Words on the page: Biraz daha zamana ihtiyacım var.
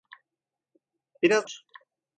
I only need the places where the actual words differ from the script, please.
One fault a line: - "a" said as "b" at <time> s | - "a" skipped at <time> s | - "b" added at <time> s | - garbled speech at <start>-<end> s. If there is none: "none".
- "daha zamana ihtiyacım" skipped at 1.5 s